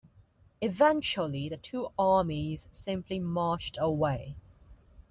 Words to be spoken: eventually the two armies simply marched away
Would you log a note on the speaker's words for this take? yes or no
no